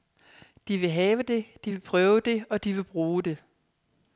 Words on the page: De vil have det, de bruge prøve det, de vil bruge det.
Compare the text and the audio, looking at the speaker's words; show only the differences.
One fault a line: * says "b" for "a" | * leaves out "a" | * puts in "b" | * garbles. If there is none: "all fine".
* says "vil" for "bruge"
* puts in "og"